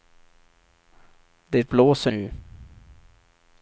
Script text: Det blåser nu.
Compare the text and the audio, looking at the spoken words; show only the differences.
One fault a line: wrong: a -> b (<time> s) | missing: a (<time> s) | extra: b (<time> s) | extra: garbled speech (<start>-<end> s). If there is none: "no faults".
no faults